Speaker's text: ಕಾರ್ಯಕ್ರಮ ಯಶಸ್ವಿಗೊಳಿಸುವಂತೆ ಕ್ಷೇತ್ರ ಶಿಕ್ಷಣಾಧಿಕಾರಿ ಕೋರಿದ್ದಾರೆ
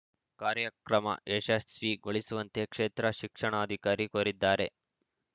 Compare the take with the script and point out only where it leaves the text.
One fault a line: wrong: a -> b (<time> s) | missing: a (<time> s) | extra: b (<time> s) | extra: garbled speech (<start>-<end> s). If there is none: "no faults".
no faults